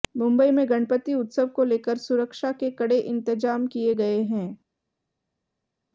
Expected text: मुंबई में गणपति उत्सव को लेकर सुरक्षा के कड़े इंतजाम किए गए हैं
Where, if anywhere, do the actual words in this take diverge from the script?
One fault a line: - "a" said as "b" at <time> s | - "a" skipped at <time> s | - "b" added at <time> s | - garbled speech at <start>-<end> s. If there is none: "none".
none